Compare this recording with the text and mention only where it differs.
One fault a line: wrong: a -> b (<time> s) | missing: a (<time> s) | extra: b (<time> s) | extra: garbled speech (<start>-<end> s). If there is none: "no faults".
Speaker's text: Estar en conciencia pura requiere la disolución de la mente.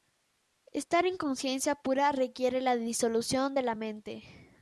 no faults